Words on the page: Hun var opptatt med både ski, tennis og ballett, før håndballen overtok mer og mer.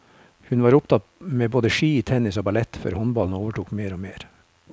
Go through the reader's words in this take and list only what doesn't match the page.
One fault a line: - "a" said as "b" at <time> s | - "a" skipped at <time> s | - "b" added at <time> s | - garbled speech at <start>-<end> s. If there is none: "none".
none